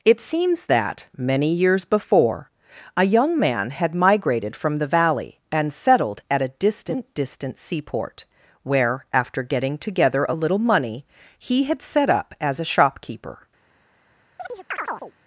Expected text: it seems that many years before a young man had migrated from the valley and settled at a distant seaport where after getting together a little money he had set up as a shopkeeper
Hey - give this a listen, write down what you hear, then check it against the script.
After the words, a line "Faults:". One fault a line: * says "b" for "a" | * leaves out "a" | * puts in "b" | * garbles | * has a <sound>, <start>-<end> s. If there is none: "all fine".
it seems that many years before a young man had migrated from the valley and settled at a distant distant seaport where after getting together a little money he had set up as a shopkeeper
Faults:
* puts in "distant"
* has a chirp, 14.4-15.1 s